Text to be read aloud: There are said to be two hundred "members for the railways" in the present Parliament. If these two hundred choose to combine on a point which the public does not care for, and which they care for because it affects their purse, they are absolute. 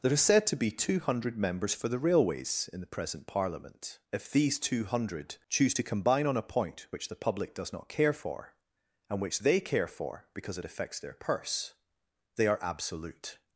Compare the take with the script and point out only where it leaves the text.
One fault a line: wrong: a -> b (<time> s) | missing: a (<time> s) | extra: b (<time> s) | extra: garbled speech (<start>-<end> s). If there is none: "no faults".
no faults